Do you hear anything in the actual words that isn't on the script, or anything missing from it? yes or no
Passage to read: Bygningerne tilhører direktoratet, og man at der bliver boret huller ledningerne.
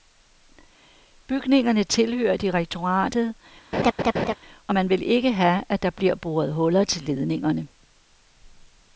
yes